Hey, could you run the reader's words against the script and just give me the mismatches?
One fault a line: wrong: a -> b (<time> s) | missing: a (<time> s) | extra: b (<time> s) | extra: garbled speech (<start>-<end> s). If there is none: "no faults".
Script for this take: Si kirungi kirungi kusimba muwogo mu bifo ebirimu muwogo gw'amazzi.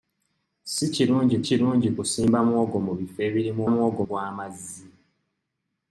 no faults